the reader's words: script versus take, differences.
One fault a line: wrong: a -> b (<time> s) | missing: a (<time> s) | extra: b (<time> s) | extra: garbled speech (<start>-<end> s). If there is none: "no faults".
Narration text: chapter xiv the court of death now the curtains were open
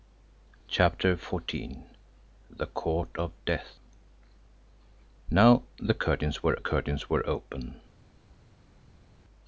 extra: curtains were (6.6 s)